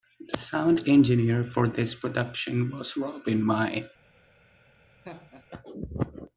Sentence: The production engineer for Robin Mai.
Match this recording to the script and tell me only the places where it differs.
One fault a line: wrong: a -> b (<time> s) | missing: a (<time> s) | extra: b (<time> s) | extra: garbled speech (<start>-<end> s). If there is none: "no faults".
wrong: production -> sound (0.4 s)
extra: this production was (1.7 s)